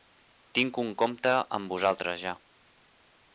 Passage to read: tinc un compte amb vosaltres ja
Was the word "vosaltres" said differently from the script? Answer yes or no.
no